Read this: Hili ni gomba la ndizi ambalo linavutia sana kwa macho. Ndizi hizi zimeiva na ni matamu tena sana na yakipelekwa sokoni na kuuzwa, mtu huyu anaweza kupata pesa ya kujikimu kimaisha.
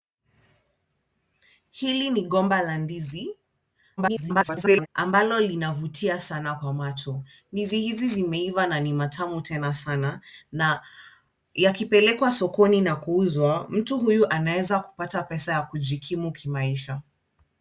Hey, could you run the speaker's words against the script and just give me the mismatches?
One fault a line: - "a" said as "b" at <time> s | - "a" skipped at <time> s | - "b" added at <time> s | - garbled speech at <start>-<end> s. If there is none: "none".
- garbled speech at 4.0-4.9 s